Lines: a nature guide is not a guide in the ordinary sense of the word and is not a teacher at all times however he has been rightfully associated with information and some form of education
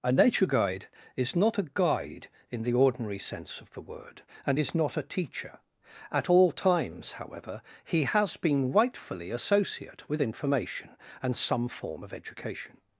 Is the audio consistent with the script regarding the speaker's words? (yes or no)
no